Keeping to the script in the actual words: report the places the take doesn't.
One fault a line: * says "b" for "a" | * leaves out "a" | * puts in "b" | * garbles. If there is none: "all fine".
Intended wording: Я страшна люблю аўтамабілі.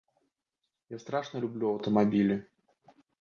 all fine